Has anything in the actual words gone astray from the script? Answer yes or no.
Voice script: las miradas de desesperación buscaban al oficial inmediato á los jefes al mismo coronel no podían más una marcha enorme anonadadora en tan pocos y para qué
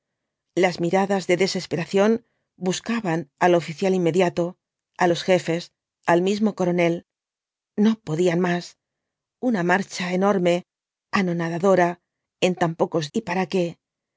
no